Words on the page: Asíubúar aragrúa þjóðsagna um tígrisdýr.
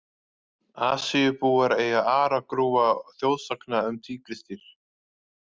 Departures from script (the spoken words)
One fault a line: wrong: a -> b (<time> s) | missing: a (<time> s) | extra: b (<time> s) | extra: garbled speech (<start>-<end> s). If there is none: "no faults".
extra: eiga (1.8 s)